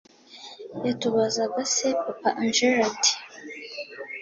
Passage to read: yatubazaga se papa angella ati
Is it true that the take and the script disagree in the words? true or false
false